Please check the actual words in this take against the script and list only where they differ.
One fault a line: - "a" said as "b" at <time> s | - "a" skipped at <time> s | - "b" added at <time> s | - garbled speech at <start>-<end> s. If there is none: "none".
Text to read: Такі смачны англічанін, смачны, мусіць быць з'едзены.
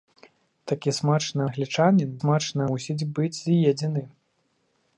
none